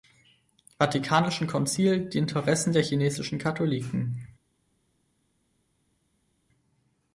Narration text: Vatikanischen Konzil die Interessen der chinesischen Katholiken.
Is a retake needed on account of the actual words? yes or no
no